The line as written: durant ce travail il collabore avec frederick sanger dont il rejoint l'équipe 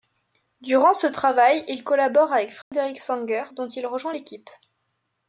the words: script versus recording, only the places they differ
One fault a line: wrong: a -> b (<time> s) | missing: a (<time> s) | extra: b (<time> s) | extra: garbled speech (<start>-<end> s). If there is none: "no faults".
no faults